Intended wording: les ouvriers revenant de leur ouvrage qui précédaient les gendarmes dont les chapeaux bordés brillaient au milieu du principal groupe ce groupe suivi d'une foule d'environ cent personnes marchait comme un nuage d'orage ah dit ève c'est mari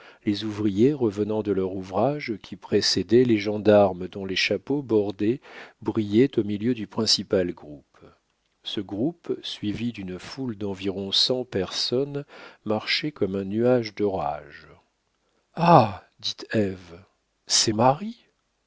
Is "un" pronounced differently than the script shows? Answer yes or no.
no